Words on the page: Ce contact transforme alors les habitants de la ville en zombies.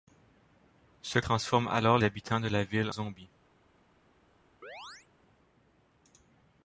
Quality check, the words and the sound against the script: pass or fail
fail